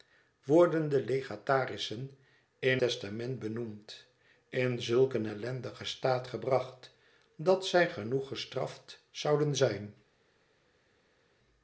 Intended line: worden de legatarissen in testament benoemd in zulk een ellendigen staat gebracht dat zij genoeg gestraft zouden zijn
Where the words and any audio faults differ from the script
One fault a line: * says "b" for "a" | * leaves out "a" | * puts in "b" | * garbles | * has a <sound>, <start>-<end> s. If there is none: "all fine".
all fine